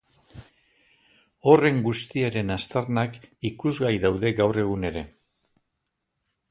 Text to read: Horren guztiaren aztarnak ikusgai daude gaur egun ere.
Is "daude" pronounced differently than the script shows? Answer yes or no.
no